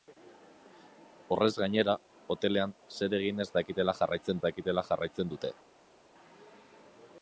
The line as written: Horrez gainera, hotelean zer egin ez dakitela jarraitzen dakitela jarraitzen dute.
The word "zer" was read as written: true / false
true